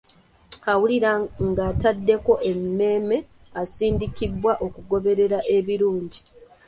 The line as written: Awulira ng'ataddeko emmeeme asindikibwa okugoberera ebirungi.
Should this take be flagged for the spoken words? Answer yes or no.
no